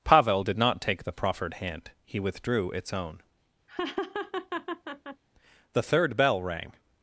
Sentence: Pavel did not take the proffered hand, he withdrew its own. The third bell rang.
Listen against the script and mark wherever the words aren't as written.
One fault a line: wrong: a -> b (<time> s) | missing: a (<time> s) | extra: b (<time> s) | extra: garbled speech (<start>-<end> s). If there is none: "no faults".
no faults